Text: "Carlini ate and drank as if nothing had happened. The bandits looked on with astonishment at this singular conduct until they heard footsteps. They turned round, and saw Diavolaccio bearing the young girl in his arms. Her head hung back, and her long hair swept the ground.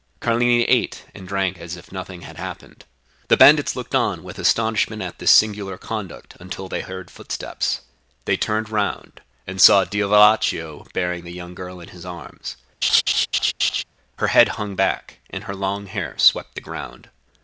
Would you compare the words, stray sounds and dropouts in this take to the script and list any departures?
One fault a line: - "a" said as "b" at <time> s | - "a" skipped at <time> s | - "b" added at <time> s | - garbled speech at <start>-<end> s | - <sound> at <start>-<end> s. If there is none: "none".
- laugh at 12.8-13.8 s